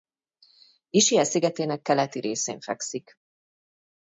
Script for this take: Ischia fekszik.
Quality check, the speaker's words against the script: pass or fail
fail